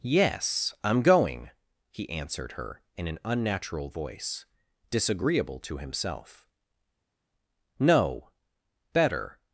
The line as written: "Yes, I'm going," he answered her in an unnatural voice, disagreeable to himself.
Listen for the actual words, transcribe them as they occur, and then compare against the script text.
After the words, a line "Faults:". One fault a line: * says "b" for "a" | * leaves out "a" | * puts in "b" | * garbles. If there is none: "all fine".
"Yes, I'm going," he answered her in an unnatural voice, disagreeable to himself. "No, better
Faults:
* puts in "No better"